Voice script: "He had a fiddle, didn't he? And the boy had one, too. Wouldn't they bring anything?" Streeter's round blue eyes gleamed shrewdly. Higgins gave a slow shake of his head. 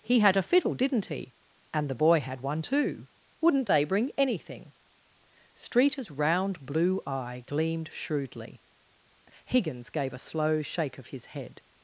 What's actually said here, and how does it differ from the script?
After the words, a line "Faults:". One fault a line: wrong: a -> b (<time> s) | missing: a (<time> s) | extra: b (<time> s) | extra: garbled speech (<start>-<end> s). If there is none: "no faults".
"He had a fiddle, didn't he? And the boy had one, too. Wouldn't they bring anything?" Streeter's round blue eye gleamed shrewdly. Higgins gave a slow shake of his head.
Faults:
wrong: eyes -> eye (7.1 s)